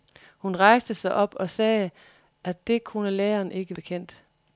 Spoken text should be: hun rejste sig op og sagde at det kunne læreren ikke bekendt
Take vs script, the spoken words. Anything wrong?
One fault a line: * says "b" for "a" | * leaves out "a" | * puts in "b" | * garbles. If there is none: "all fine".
all fine